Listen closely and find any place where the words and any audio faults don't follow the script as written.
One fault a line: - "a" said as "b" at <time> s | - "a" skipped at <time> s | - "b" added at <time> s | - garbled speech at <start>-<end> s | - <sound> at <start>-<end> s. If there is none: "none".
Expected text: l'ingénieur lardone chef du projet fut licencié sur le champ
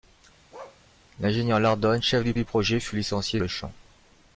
- bark at 0.5-0.8 s
- "du" added at 2.3 s
- "sur" skipped at 3.4 s